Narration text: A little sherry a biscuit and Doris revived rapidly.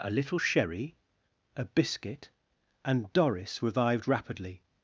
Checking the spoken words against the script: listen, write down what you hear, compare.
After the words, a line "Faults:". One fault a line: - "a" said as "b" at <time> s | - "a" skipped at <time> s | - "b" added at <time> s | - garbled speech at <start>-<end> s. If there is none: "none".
A little sherry a biscuit and Doris revived rapidly.
Faults:
none